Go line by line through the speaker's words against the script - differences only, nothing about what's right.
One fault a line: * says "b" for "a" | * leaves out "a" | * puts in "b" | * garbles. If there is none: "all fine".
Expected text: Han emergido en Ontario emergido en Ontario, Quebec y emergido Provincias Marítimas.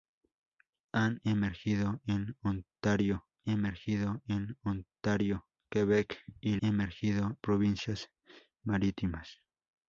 all fine